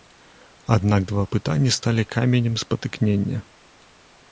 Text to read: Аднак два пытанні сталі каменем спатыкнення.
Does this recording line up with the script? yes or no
yes